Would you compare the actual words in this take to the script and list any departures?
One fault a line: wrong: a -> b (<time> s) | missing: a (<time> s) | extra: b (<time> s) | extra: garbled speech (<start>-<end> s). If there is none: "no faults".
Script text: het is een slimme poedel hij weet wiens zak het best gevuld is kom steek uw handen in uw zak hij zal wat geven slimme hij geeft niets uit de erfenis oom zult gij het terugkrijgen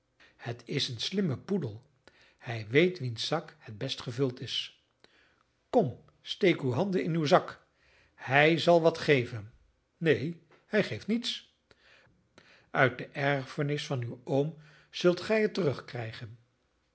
wrong: slimme -> neen (10.0 s)
extra: van uw (13.8 s)